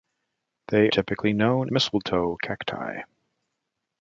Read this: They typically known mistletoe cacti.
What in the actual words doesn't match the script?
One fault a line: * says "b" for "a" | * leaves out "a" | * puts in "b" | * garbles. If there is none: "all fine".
all fine